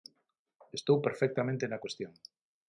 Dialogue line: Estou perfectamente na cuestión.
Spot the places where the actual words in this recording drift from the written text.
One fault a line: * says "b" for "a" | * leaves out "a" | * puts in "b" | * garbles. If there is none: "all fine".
all fine